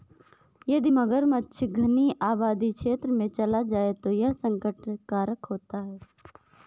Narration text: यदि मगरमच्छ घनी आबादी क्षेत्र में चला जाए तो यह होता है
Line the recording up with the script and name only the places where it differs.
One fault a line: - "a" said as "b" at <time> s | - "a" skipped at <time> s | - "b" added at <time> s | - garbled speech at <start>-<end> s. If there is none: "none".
- "संकट कारक" added at 4.4 s